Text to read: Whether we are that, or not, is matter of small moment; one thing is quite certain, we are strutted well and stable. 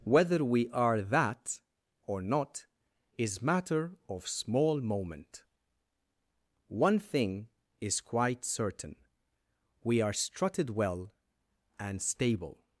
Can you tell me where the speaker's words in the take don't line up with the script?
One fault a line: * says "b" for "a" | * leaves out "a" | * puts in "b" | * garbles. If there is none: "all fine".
all fine